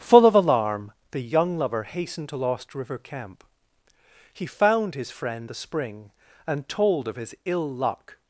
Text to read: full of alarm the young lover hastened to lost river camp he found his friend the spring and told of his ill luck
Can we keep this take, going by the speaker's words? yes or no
yes